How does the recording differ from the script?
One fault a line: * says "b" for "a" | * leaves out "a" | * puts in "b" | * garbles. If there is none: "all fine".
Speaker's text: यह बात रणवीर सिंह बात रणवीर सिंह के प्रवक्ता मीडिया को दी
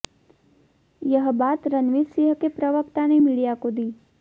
* leaves out "बात रणवीर सिंह"
* puts in "ने"